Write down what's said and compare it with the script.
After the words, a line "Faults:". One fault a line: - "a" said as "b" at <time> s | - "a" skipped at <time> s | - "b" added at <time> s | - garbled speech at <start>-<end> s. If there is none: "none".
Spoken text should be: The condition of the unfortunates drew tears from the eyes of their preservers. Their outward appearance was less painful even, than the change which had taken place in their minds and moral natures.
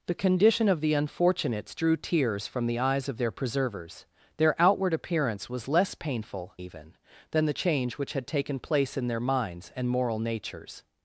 The condition of the unfortunates drew tears from the eyes of their preservers. Their outward appearance was less painful even, than the change which had taken place in their minds and moral natures.
Faults:
none